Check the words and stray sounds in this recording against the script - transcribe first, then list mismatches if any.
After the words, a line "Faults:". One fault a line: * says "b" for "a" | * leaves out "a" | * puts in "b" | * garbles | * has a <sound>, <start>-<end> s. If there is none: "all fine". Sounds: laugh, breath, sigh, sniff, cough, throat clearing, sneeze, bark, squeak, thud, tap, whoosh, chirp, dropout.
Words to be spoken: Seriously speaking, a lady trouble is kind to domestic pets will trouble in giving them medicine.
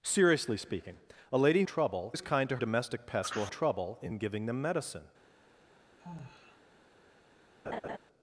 Seriously speaking, a lady trouble is kind to domestic pets will trouble in giving them medicine.
Faults:
* has a sigh, 6.0-6.6 s
* has a laugh, 7.6-8.0 s